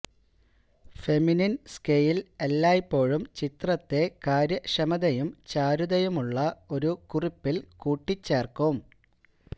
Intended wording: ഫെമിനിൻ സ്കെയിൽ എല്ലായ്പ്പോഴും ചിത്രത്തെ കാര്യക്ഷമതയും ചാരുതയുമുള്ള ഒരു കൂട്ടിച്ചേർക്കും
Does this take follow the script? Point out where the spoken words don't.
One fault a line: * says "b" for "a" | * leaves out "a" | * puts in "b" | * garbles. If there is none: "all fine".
* puts in "കുറിപ്പിൽ"